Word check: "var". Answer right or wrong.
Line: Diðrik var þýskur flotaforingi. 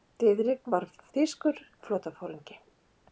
right